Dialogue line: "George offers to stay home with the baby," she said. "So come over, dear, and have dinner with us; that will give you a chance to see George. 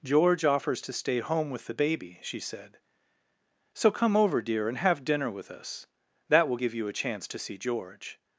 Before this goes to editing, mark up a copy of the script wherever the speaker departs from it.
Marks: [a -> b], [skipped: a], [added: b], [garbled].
"George offers to stay home with the baby," she said. "So come over, dear, and have dinner with us; that will give you a chance to see George.